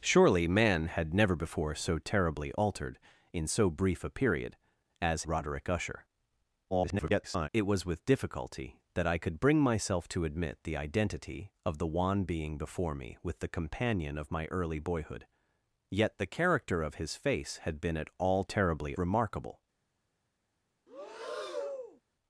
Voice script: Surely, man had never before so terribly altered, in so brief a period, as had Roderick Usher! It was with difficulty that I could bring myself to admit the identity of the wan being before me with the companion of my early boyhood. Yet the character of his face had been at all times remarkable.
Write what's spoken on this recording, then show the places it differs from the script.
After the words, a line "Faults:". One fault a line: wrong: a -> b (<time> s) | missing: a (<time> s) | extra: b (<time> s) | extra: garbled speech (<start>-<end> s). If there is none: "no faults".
Surely, man had never before so terribly altered, in so brief a period, as Roderick Usher! [garbled] It was with difficulty that I could bring myself to admit the identity of the wan being before me with the companion of my early boyhood. Yet the character of his face had been at all terribly remarkable.
Faults:
missing: had (5.2 s)
extra: garbled speech (6.7-7.5 s)
wrong: times -> terribly (18.4 s)